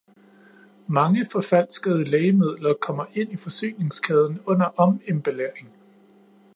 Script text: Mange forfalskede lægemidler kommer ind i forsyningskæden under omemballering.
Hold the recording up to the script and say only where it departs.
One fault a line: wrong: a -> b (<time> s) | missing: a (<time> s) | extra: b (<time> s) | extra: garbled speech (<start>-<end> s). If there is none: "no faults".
no faults